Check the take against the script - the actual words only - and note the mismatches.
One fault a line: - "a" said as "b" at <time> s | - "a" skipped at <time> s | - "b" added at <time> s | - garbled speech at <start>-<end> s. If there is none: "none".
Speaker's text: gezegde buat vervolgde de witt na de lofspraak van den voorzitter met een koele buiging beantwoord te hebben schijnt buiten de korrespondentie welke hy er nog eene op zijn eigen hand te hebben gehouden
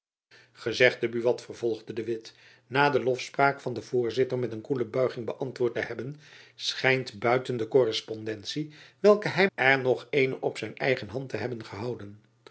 none